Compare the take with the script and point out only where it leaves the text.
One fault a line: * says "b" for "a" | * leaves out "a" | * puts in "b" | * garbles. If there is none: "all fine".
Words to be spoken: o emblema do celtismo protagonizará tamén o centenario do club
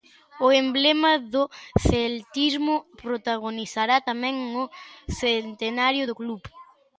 all fine